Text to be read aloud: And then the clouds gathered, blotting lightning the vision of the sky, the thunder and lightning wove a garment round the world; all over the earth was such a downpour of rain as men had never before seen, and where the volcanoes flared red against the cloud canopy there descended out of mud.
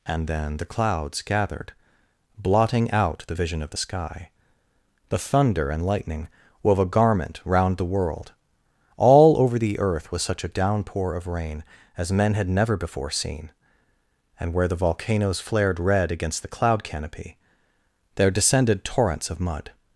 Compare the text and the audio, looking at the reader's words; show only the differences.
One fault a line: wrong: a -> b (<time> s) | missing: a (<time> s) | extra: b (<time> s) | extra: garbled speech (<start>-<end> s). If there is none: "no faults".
wrong: lightning -> out (2.9 s)
wrong: out -> torrents (18.8 s)